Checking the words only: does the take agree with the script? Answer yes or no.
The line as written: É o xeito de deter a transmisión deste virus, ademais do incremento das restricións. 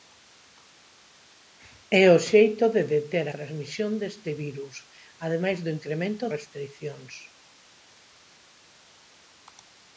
no